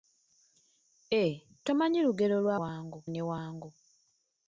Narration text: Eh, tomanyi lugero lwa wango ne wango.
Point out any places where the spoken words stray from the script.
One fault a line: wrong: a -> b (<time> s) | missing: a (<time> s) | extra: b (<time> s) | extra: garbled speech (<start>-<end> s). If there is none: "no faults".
no faults